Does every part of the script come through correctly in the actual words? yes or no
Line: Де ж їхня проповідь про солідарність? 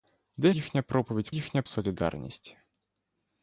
no